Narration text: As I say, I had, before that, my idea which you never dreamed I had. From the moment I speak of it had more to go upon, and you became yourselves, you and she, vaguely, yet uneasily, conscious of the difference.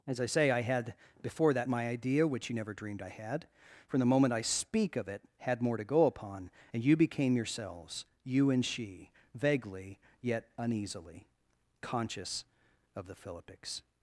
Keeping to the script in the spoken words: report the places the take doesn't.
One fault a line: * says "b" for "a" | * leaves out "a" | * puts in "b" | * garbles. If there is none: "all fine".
* says "philippics" for "difference"